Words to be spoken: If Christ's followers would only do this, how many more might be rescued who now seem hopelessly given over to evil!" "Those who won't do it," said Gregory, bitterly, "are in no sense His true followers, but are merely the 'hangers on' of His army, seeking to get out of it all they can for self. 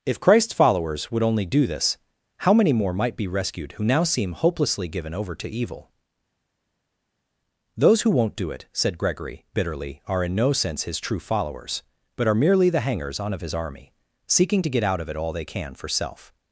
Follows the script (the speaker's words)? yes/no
yes